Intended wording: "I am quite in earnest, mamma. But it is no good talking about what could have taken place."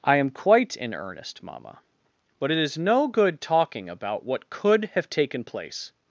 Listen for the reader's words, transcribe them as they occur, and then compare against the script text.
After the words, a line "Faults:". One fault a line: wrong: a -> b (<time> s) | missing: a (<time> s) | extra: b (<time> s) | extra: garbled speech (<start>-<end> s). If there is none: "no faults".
"I am quite in earnest, mamma. But it is no good talking about what could have taken place."
Faults:
no faults